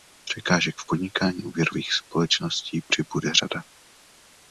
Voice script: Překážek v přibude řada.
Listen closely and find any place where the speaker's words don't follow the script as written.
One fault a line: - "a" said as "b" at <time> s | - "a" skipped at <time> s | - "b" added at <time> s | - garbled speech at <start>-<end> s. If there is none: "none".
- "podnikání úvěrových společností" added at 0.8 s